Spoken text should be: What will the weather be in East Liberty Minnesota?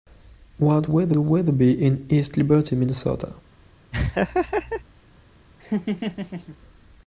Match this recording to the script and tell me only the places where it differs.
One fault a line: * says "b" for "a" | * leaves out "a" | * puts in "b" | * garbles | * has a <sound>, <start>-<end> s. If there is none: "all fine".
* says "weather" for "will"
* has a laugh, 3.9-4.8 s
* has a laugh, 5.6-6.6 s